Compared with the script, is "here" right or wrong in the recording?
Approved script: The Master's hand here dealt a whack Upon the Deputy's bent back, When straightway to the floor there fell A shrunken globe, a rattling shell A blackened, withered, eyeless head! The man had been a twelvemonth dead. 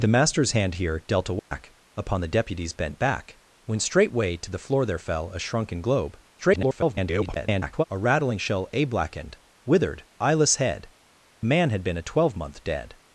right